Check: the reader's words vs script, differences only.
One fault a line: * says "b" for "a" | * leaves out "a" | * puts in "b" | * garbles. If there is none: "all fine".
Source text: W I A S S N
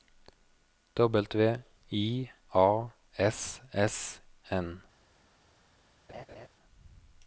all fine